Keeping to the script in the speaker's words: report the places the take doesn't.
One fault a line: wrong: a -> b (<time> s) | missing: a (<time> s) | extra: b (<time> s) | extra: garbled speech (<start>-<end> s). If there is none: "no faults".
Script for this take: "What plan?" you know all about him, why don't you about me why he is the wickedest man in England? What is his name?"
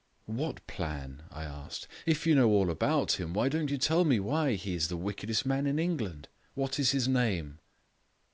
extra: I asked If (1.3 s)
wrong: about -> tell (3.8 s)